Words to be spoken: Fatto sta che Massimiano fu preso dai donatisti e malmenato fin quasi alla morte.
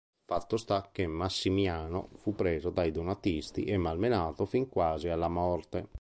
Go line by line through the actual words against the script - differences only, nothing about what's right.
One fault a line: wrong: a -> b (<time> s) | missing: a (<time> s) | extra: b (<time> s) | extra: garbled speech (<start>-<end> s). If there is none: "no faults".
no faults